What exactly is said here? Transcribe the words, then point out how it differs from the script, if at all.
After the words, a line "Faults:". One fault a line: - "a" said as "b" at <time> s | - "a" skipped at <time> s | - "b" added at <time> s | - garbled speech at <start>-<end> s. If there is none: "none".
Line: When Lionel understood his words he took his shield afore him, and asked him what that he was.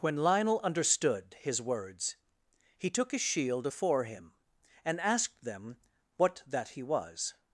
When Lionel understood his words he took his shield afore him, and asked them what that he was.
Faults:
- "him" said as "them" at 5.4 s